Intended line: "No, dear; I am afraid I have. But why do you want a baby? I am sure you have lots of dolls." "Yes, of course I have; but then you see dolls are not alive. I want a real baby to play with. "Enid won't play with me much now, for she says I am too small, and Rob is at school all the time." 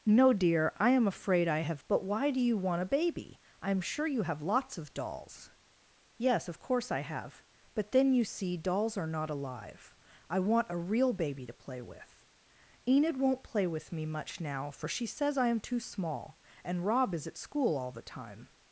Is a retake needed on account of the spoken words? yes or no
no